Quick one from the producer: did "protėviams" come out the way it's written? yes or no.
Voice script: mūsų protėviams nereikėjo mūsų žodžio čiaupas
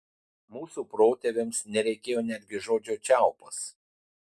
yes